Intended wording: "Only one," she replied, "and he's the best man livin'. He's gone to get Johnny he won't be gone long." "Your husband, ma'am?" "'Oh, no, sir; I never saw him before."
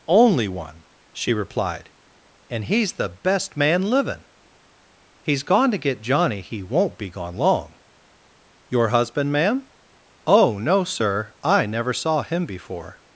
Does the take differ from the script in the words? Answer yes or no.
no